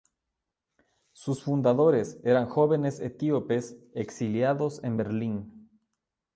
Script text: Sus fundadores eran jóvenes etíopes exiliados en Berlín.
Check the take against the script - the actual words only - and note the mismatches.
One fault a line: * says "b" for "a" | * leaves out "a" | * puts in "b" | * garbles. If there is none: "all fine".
all fine